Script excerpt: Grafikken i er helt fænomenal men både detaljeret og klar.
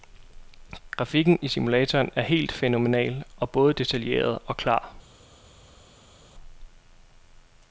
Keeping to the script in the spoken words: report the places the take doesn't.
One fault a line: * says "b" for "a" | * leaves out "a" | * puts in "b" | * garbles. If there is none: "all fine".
* puts in "simulatoren"
* says "og" for "men"